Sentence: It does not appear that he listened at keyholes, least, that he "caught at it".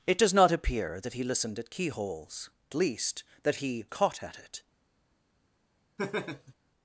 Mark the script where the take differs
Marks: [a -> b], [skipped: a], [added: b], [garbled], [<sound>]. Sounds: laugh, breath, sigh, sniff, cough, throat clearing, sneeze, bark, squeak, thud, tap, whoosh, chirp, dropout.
It does not appear that he listened at keyholes, least, that he "caught at it". [laugh]